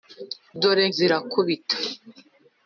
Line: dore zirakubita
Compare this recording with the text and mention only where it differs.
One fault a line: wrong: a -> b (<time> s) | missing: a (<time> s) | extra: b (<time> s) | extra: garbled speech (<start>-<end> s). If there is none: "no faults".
no faults